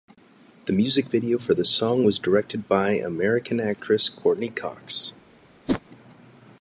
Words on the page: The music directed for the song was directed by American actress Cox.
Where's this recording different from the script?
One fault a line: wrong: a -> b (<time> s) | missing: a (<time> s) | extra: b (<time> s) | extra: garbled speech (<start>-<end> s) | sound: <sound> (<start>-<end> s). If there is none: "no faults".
wrong: directed -> video (1.1 s)
extra: Courteney (4.1 s)
sound: whoosh (5.7-5.8 s)